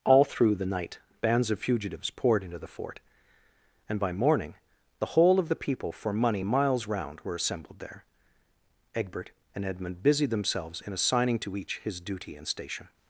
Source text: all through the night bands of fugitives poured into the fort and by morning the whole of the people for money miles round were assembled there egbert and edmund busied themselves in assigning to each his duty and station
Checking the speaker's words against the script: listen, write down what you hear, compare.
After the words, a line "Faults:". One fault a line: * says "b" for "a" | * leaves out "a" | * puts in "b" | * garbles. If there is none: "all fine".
all through the night bands of fugitives poured into the fort and by morning the whole of the people for money miles round were assembled there egbert and edmund busied themselves in assigning to each his duty and station
Faults:
all fine